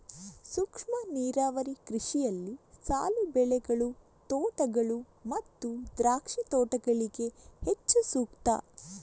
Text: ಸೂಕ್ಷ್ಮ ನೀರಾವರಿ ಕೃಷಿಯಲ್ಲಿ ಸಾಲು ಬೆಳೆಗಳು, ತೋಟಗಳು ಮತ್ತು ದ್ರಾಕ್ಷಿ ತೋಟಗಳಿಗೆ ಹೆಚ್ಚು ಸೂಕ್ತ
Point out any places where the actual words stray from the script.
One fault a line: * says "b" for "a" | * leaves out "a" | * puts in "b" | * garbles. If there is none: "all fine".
all fine